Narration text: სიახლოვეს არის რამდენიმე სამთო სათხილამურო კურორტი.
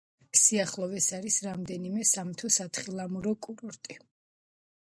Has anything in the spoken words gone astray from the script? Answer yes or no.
no